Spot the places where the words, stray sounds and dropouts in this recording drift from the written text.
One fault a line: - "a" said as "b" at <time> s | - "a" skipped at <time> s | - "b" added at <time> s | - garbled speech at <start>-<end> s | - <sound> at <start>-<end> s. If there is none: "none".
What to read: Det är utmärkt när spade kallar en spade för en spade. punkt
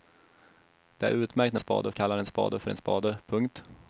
none